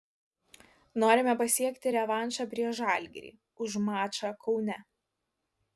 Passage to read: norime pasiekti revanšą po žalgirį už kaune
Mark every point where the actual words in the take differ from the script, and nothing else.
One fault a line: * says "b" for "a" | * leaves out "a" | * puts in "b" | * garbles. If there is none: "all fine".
* says "prieš" for "po"
* puts in "mačą"